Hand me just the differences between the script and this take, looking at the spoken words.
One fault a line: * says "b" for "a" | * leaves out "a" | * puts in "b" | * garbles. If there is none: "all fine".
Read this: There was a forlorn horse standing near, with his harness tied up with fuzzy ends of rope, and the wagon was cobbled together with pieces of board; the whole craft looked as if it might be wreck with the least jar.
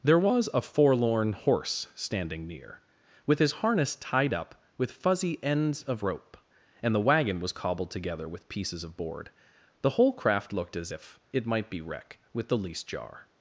all fine